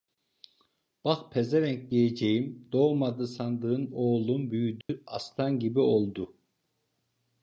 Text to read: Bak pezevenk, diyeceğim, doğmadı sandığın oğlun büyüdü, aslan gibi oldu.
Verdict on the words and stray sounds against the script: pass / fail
fail